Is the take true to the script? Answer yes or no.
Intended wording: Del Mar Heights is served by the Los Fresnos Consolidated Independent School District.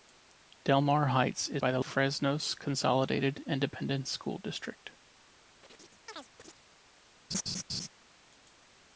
no